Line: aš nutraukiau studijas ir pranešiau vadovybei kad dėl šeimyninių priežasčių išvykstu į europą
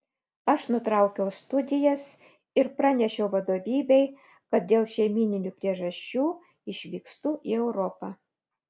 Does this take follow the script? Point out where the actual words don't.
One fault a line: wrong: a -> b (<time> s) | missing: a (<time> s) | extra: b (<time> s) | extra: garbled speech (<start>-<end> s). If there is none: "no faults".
no faults